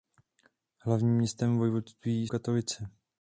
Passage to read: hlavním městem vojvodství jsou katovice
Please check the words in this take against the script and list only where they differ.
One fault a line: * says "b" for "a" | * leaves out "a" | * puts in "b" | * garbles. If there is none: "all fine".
* leaves out "jsou"